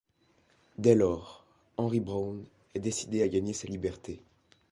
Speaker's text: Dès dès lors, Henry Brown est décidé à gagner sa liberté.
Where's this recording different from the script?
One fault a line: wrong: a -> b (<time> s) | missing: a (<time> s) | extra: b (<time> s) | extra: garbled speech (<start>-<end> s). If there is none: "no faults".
missing: dès (0.9 s)